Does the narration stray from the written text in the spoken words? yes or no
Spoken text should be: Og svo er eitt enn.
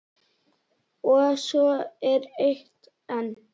no